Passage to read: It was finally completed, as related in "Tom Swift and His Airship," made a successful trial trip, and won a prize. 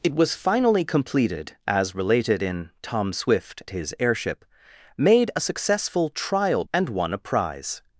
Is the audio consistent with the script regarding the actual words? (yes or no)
no